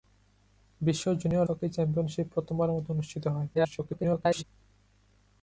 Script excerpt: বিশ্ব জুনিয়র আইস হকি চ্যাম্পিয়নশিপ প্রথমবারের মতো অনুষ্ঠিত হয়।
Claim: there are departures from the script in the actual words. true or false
true